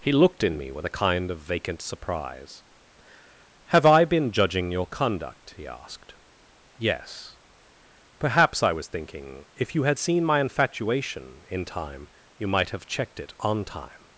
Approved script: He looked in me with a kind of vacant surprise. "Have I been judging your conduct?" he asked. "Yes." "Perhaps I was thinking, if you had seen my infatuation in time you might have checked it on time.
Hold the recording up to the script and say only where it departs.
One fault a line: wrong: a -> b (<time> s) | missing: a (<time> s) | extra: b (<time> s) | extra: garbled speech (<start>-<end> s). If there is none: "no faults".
no faults